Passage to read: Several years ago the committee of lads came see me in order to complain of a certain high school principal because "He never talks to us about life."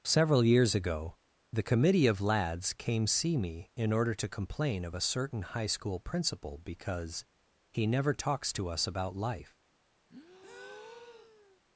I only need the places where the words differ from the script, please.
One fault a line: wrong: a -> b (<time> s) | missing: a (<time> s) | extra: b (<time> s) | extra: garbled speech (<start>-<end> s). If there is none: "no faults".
no faults